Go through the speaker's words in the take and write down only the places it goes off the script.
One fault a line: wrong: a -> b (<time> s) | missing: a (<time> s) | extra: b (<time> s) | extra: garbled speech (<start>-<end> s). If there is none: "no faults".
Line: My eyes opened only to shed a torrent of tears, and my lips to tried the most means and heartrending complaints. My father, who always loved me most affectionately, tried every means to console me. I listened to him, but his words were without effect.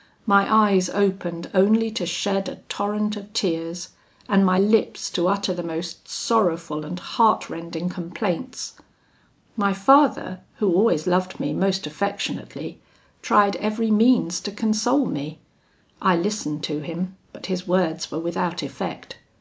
wrong: tried -> utter (5.3 s)
wrong: means -> sorrowful (6.1 s)